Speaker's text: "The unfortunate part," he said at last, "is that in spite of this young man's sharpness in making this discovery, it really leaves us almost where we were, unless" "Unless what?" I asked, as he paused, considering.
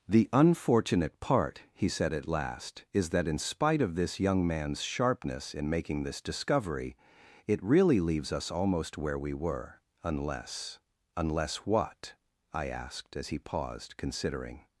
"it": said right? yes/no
yes